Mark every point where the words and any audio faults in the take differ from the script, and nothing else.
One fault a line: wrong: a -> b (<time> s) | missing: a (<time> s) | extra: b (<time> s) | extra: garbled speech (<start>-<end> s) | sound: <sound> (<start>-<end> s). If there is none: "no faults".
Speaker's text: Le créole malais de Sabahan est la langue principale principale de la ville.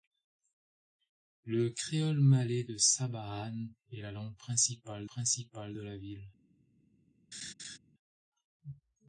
sound: laugh (7.3-7.8 s)